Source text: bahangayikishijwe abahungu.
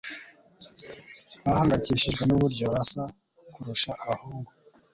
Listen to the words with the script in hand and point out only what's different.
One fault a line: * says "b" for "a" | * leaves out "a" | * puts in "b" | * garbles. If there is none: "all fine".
* puts in "nuburyo basa kurusha"